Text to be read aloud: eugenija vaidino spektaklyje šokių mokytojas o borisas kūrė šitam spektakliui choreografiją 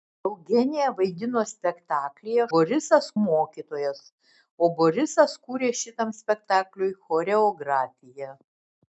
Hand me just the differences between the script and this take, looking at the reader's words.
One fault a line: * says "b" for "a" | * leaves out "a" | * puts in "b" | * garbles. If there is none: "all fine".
* says "borisas" for "šokių"